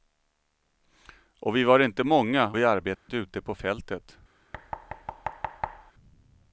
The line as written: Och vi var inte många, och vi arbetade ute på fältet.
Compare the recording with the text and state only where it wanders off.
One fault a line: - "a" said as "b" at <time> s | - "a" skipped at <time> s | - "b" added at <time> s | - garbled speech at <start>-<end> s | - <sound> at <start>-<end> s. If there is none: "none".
- "och" skipped at 2.5 s
- dropout at 3.0-3.1 s
- thud at 4.5-5.9 s